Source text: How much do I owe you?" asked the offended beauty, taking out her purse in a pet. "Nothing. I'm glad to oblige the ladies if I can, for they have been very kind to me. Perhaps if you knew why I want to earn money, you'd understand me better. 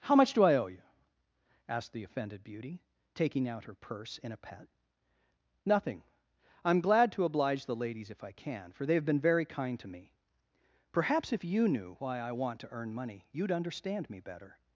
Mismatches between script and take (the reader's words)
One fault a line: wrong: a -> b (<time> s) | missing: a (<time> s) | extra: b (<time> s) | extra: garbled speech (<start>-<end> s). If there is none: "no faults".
no faults